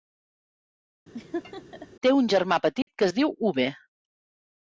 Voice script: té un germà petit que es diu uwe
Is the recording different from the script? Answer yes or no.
no